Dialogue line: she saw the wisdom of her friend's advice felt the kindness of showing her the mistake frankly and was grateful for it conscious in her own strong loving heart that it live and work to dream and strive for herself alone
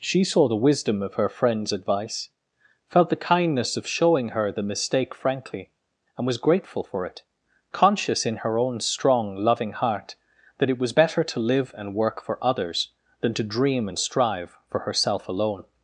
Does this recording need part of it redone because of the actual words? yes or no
yes